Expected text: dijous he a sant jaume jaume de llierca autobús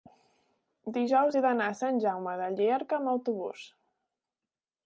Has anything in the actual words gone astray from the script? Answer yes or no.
yes